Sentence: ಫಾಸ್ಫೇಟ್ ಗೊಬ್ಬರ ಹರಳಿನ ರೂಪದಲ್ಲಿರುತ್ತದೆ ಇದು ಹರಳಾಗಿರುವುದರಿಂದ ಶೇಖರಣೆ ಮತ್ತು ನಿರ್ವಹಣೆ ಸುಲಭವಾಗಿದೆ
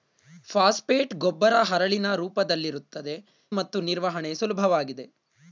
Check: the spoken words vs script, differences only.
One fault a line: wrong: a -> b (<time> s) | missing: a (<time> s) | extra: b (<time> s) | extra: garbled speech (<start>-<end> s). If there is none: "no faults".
missing: ಇದು ಹರಳಾಗಿರುವುದರಿಂದ ಶೇಖರಣೆ (3.1 s)